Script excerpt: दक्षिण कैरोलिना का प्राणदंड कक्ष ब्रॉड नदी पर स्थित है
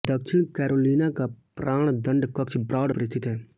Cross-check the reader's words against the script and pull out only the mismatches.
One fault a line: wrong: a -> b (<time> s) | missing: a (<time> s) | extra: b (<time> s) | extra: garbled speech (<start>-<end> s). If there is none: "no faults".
missing: नदी (2.9 s)